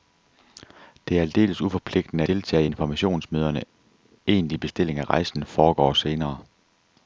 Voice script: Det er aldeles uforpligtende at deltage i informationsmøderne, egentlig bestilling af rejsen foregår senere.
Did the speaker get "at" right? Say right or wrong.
wrong